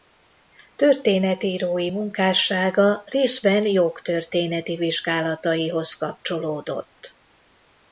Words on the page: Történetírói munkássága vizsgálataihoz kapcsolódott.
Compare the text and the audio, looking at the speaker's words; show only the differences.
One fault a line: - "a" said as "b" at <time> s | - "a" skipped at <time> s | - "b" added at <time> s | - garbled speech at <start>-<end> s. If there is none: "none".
- "részben jogtörténeti" added at 3.0 s